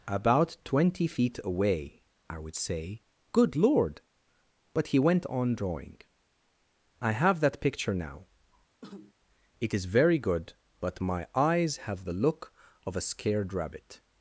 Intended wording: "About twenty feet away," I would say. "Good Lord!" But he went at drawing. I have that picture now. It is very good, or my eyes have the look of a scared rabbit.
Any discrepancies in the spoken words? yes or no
yes